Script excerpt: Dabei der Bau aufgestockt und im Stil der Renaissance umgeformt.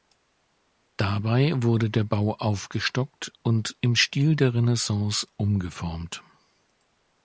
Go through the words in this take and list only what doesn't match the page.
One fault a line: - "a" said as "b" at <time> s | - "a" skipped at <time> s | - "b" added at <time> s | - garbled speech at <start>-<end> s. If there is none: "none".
- "wurde" added at 1.6 s